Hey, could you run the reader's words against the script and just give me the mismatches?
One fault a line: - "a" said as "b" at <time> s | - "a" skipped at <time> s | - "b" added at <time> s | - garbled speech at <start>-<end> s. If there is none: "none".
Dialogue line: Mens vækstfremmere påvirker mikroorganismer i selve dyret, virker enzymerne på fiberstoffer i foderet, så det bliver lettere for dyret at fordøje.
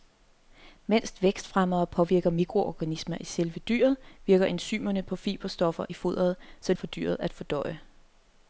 - "det bliver lettere" skipped at 6.7 s